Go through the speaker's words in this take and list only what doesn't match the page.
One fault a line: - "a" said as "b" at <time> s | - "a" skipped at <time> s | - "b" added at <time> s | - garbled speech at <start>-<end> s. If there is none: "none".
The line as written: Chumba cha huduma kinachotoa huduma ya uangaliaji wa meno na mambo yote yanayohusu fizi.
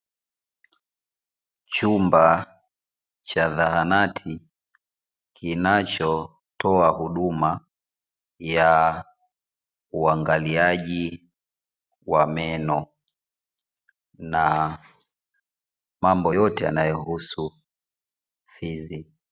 - "huduma" said as "zahanati" at 3.5 s